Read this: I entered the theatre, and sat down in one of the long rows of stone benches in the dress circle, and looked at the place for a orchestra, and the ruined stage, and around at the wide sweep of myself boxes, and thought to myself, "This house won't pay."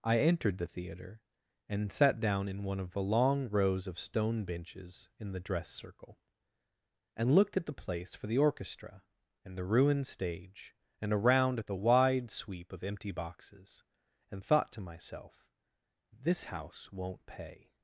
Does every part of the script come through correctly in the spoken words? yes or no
no